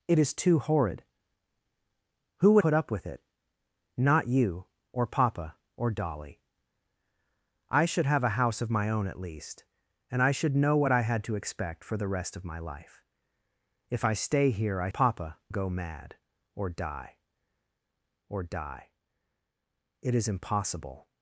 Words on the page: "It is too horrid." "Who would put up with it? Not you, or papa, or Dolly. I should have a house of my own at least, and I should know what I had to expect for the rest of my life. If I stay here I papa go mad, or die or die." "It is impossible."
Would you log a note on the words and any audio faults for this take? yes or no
no